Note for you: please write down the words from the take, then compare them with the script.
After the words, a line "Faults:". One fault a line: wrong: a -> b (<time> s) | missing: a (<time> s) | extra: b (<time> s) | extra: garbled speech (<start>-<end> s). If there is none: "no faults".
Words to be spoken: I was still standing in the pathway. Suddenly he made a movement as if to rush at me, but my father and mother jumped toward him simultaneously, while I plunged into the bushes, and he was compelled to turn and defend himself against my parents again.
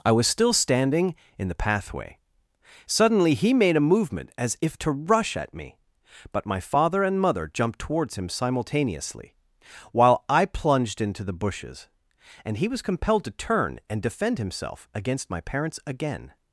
I was still standing in the pathway. Suddenly he made a movement as if to rush at me, but my father and mother jumped towards him simultaneously, while I plunged into the bushes, and he was compelled to turn and defend himself against my parents again.
Faults:
wrong: toward -> towards (7.8 s)